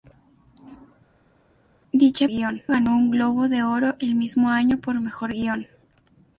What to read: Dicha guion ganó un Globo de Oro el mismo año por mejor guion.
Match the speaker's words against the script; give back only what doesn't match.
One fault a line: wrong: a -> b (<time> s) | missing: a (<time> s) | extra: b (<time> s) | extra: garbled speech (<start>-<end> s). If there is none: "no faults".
no faults